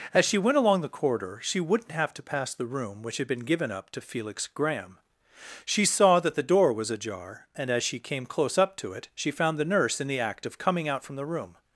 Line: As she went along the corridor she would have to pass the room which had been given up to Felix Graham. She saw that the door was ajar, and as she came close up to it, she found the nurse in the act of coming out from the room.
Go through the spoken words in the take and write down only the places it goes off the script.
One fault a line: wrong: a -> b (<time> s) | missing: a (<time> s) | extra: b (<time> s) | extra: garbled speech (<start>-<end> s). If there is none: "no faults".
wrong: would -> wouldn't (1.6 s)